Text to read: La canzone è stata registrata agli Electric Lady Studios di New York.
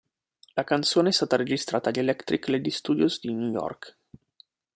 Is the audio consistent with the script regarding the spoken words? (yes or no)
yes